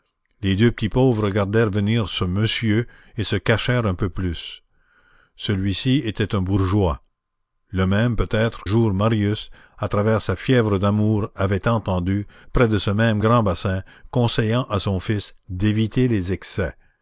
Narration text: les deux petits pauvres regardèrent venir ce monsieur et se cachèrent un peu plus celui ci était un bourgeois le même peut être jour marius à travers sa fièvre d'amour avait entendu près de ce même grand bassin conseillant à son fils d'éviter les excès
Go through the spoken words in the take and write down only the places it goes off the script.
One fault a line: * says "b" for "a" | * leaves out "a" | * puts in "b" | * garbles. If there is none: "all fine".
all fine